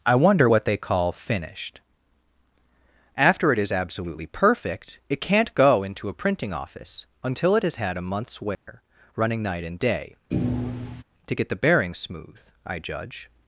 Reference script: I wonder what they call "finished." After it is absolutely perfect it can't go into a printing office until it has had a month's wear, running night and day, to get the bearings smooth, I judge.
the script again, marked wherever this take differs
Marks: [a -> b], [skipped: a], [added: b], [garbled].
I wonder what they call "finished." After it is absolutely perfect it can't go into a printing office until it has had a month's wear, running night and day, to get the bearings smooth, I judge.